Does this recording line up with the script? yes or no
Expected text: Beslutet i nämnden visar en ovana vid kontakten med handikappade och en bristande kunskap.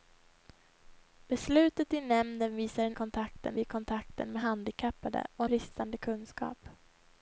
no